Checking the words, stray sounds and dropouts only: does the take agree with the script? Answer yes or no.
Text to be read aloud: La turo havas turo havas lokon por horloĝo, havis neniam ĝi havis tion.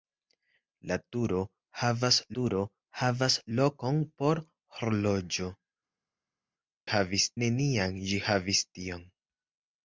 yes